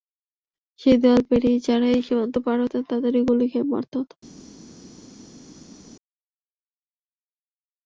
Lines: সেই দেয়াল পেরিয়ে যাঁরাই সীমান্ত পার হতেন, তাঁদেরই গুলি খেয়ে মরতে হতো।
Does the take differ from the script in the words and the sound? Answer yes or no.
no